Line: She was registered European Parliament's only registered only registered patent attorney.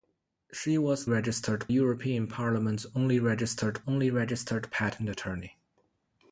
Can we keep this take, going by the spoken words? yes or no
yes